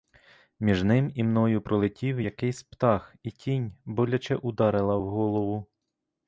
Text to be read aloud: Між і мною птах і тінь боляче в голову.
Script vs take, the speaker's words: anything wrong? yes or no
yes